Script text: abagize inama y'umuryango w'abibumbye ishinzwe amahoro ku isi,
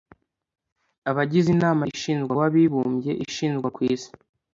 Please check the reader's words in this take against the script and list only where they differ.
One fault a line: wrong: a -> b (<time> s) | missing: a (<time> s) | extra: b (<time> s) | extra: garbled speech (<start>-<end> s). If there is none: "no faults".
wrong: y'umuryango -> ishinzwe (1.9 s)
missing: amahoro (3.7 s)